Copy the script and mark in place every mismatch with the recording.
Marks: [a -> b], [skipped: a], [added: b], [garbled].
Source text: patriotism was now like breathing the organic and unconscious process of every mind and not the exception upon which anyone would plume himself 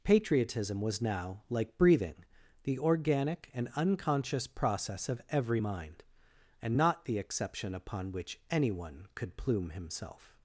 patriotism was now like breathing the organic and unconscious process of every mind and not the exception upon which anyone [would -> could] plume himself